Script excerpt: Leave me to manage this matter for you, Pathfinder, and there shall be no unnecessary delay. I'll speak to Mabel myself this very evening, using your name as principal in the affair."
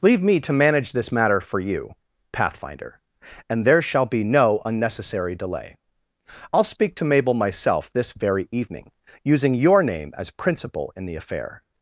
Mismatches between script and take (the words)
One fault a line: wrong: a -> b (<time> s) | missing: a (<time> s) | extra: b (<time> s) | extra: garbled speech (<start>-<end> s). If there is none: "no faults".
no faults